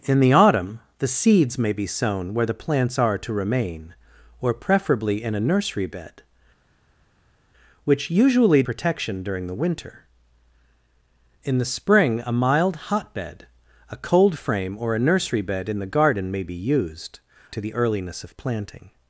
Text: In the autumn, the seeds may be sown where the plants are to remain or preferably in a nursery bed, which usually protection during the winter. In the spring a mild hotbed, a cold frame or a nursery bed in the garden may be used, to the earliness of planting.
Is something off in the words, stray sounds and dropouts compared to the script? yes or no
no